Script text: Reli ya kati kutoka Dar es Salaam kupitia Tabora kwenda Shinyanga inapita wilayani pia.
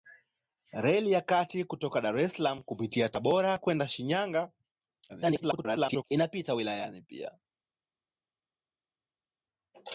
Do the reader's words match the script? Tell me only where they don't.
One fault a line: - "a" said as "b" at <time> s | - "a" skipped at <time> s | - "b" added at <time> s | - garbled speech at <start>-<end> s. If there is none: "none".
- garbled speech at 5.1-6.0 s